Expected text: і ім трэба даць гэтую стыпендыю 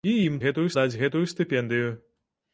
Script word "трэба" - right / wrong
wrong